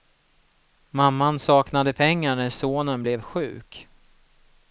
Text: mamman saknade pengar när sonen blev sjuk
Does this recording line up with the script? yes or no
yes